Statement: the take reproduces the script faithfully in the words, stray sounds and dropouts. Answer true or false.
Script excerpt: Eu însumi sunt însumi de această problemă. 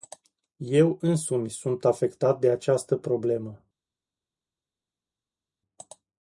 false